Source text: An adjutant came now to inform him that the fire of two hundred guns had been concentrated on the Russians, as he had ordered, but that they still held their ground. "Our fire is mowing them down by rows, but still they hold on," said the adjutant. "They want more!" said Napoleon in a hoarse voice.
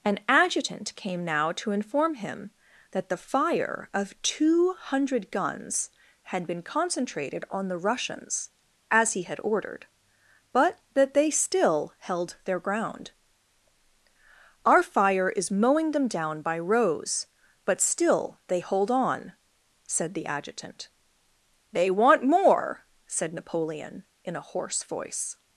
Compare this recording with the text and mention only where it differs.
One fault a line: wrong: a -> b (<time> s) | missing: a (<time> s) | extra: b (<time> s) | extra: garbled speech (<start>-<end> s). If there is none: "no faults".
no faults